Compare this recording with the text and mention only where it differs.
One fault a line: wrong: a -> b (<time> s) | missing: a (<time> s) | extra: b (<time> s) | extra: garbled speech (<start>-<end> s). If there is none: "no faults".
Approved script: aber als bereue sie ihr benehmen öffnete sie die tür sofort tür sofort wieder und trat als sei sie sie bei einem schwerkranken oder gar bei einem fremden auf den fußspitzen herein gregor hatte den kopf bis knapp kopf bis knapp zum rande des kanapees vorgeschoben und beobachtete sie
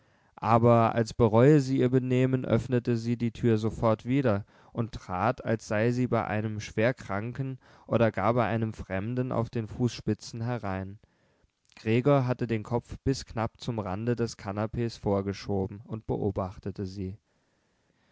missing: tür sofort (4.0 s)
missing: sie (6.1 s)
missing: kopf bis knapp (13.6 s)